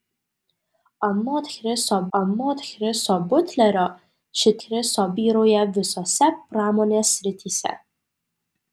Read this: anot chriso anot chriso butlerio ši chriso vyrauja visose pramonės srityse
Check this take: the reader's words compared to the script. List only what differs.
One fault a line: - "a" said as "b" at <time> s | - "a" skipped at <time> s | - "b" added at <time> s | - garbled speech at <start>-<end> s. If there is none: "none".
none